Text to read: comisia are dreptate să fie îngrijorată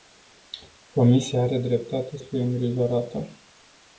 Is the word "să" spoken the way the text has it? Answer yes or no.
no